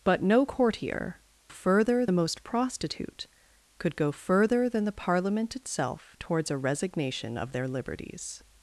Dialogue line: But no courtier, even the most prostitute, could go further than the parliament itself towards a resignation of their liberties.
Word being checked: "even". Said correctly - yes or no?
no